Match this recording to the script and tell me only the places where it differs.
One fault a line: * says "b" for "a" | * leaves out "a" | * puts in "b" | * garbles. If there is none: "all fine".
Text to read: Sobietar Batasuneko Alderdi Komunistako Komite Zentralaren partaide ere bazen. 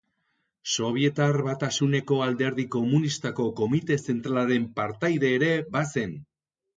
all fine